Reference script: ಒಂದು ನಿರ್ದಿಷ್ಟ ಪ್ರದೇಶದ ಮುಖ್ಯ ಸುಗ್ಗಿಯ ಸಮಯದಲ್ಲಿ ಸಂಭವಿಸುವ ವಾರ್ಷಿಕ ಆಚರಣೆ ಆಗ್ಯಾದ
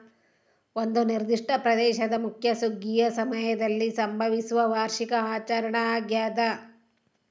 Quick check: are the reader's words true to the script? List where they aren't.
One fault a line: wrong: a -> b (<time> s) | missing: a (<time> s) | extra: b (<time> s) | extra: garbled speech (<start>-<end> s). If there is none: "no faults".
no faults